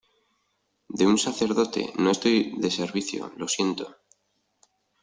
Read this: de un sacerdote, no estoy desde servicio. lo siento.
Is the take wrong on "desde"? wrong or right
wrong